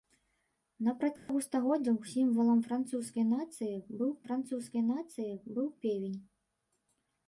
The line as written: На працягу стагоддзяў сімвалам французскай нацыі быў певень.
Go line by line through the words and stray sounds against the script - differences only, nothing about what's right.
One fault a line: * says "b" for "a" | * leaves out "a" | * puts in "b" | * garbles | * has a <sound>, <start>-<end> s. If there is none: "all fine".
* has a dropout, 1.2-1.3 s
* puts in "французскай нацыі быў"